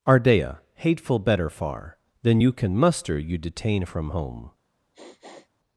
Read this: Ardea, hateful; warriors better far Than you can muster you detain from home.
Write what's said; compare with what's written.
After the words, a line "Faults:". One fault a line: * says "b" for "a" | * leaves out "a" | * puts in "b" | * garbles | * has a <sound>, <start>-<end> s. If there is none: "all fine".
Ardea, hateful; better far Than you can muster you detain from home.
Faults:
* leaves out "warriors"
* has a sniff, 4.9-5.5 s